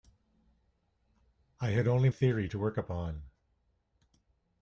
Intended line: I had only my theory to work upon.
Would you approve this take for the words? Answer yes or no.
no